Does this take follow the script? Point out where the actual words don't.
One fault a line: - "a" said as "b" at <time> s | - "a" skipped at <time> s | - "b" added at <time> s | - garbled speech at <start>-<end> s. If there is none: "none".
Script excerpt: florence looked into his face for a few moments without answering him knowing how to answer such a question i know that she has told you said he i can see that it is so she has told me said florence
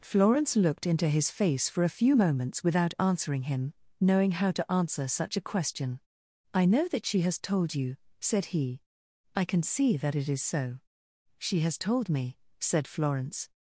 none